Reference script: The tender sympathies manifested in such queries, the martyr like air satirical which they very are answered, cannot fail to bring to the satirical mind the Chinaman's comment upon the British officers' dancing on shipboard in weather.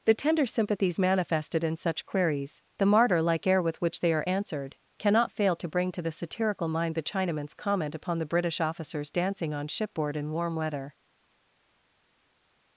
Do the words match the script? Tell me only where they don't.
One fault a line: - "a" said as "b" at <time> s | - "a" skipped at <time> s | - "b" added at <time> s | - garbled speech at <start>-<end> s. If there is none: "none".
- "satirical" said as "with" at 3.6 s
- "very" skipped at 4.1 s
- "warm" added at 10.3 s